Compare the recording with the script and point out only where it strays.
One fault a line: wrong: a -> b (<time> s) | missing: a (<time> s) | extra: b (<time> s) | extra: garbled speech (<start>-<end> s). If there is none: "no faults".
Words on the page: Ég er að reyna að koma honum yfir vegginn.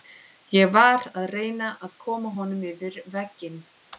wrong: er -> var (0.8 s)